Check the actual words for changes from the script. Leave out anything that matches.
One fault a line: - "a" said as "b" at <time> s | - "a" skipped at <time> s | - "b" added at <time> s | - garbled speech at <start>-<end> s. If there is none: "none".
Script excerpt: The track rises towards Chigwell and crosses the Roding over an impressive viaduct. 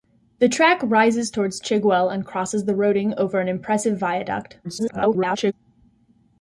- garbled speech at 4.6-5.5 s